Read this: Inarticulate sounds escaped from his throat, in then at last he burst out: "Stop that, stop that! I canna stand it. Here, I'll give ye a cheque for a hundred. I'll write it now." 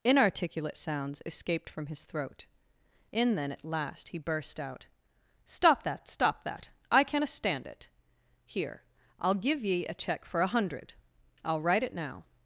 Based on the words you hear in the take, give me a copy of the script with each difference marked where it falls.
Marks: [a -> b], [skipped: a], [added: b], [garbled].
Inarticulate sounds escaped from his throat, in then at last he burst out: "Stop that, stop that! I canna stand it. Here, I'll give ye a cheque for a hundred. I'll write it now."